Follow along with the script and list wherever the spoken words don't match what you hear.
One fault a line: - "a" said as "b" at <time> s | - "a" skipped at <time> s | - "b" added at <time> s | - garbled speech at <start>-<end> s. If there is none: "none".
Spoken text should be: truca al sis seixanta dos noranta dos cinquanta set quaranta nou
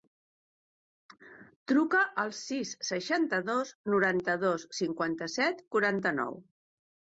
none